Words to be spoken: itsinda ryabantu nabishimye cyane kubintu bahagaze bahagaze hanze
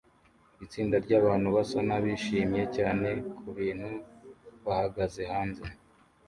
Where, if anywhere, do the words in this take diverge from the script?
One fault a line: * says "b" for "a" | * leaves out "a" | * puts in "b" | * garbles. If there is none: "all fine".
* puts in "basa"
* leaves out "bahagaze"